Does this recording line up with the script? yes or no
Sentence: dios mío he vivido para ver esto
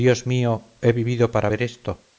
yes